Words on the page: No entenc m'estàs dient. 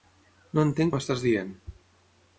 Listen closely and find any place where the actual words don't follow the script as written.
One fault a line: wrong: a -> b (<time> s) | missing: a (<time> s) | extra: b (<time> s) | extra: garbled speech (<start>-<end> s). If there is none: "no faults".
no faults